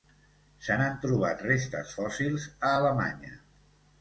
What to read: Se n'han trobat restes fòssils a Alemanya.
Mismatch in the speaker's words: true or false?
false